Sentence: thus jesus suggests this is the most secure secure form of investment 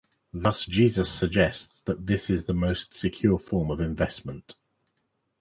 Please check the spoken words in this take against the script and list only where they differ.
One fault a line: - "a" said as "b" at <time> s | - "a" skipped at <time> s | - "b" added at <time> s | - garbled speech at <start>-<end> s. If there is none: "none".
- "that" added at 1.8 s
- "secure" skipped at 3.4 s